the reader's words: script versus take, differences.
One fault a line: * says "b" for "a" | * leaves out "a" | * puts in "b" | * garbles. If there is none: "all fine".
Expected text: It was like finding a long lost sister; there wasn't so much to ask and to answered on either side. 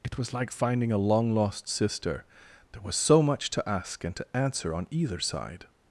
* says "was" for "wasn't"
* says "answer" for "answered"